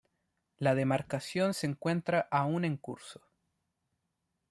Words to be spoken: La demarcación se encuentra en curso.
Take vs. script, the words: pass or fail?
fail